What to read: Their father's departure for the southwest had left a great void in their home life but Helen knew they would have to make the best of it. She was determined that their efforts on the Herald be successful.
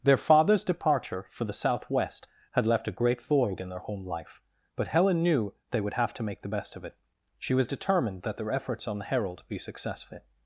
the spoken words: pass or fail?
pass